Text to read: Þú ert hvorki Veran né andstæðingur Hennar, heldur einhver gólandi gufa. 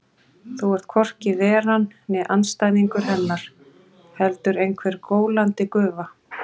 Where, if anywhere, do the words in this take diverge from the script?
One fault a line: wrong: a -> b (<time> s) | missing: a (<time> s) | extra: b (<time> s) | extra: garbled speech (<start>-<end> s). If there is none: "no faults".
no faults